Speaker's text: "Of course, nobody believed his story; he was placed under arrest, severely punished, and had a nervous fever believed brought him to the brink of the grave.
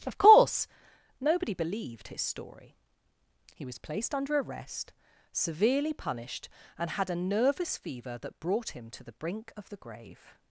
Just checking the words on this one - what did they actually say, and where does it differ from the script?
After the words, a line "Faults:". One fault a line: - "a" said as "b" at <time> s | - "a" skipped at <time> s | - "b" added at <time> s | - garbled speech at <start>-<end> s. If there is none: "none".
"Of course, nobody believed his story; he was placed under arrest, severely punished, and had a nervous fever that brought him to the brink of the grave.
Faults:
- "believed" said as "that" at 8.2 s